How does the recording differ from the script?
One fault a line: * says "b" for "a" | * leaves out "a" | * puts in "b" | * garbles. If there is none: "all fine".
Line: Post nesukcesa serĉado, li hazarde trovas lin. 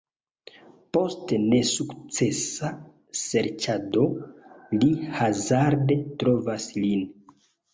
all fine